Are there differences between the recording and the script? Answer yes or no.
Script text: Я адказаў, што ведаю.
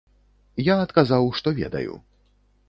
no